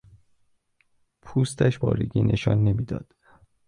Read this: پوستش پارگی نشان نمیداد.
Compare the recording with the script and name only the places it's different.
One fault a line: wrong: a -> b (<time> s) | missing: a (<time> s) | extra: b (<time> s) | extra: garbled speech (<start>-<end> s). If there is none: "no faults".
no faults